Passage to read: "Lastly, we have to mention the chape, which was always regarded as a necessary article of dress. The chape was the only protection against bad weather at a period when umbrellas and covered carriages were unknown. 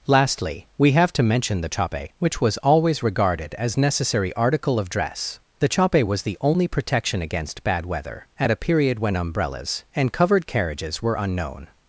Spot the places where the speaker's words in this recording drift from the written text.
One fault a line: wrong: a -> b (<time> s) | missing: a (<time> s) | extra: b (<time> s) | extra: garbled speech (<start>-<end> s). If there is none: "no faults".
missing: a (3.8 s)